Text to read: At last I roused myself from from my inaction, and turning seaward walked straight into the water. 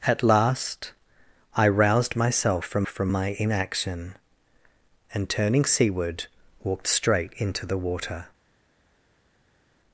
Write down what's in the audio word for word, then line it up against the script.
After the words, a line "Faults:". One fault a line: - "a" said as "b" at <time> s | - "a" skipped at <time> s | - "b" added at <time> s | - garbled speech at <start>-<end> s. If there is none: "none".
At last I roused myself from from my inaction, and turning seaward walked straight into the water.
Faults:
none